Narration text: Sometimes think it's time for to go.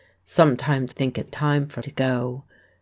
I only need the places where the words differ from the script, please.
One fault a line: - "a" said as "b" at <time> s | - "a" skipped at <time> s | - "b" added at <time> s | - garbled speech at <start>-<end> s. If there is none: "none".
none